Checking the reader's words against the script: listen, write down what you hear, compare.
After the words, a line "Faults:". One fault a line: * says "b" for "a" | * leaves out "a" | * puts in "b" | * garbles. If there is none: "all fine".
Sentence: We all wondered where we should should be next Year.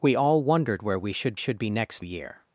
We all wondered where we should should be next Year.
Faults:
all fine